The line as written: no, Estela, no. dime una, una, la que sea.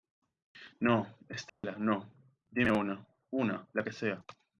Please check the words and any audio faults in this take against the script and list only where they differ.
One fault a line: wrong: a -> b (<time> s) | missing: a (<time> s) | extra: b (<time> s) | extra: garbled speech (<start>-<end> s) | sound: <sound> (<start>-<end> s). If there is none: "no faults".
sound: dropout (1.5-1.6 s)